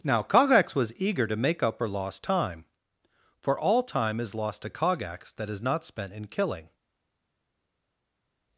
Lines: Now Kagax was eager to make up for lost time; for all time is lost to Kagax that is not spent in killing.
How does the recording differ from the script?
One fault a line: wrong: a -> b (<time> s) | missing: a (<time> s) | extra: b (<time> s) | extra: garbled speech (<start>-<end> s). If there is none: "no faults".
no faults